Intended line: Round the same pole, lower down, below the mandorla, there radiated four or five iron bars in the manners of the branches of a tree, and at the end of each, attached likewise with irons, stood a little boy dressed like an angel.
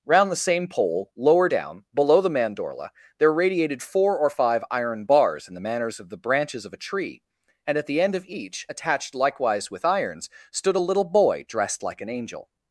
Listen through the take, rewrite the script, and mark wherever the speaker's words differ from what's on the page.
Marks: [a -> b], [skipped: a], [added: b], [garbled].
Round the same pole, lower down, below the mandorla, there radiated four or five iron bars in the manners of the branches of a tree, and at the end of each, attached likewise with irons, stood a little boy dressed like an angel.